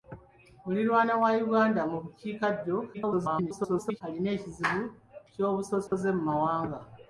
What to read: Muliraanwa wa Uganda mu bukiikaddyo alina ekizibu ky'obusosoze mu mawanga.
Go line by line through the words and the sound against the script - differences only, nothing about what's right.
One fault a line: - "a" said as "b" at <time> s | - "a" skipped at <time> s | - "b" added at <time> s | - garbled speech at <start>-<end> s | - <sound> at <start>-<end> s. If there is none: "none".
- garbled speech at 2.9-4.0 s
- dropout at 5.9-5.9 s